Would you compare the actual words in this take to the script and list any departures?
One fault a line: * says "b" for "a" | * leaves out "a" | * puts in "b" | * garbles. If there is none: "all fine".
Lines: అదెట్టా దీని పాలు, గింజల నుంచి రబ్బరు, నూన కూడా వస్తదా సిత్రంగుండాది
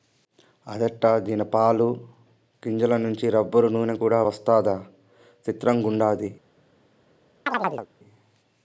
all fine